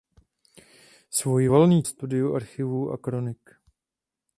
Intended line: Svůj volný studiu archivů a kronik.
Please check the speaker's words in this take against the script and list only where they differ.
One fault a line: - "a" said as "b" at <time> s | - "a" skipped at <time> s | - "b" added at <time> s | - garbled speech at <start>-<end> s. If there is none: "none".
none